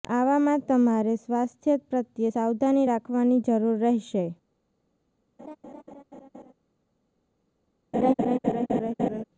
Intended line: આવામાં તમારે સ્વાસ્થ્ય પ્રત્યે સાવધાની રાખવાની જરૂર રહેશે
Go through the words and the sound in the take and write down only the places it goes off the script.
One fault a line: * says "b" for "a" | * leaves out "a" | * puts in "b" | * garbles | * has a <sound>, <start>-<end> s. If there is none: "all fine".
* has a laugh, 5.4-6.5 s
* has a laugh, 7.9-9.2 s